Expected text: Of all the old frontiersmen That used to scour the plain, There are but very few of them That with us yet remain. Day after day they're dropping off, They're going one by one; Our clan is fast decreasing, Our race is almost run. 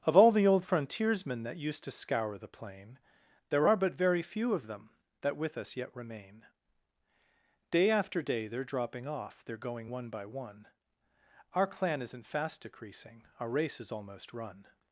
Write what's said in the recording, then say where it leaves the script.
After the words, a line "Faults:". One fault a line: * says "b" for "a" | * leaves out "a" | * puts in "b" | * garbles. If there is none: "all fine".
Of all the old frontiersmen That used to scour the plain, There are but very few of them That with us yet remain. Day after day they're dropping off, They're going one by one; Our clan isn't fast decreasing, Our race is almost run.
Faults:
* says "isn't" for "is"